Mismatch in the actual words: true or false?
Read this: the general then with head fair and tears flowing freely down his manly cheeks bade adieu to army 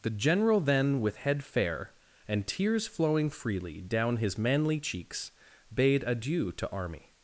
false